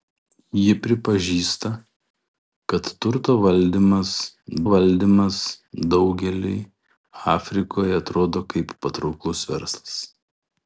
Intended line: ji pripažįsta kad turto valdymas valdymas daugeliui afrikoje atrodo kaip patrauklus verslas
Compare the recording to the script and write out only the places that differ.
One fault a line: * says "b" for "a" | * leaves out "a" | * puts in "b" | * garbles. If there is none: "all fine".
all fine